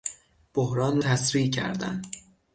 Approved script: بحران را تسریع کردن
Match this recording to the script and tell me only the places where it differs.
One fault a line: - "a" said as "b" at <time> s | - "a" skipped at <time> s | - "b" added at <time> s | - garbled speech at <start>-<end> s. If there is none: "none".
- "را" skipped at 1.0 s